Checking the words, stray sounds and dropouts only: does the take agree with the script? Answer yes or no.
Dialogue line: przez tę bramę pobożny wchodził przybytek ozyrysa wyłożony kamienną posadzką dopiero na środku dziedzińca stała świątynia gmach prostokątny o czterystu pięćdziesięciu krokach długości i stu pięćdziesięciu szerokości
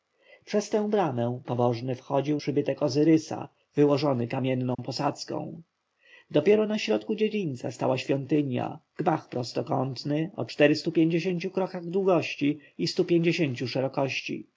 no